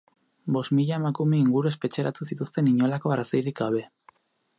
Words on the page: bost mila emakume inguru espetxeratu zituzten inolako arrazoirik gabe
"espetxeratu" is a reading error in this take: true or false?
false